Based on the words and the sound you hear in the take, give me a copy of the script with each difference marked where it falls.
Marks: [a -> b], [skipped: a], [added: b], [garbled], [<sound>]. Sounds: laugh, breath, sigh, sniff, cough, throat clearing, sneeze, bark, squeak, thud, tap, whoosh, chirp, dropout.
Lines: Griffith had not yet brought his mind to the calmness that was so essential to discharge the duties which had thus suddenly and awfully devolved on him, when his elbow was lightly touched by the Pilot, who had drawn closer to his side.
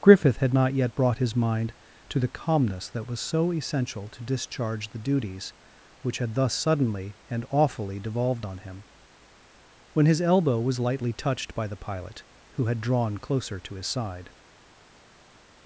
Griffith had not yet brought his mind to the calmness that was so essential to discharge the duties which had thus suddenly and awfully devolved on him, when his elbow was lightly touched by the Pilot, who had drawn closer to his side.